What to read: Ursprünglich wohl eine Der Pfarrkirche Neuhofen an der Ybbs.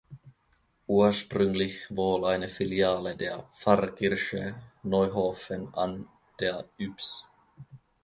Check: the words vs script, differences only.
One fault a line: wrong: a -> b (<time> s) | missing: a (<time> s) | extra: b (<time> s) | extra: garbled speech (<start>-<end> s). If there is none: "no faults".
extra: Filiale (2.5 s)